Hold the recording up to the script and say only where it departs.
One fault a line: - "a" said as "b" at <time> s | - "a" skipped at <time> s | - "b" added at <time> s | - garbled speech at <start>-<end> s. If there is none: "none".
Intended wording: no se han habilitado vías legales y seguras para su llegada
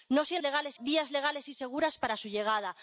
- "habilitado" said as "legales" at 0.4 s